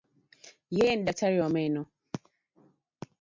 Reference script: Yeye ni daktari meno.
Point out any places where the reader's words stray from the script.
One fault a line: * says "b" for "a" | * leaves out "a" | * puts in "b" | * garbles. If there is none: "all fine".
* puts in "wa"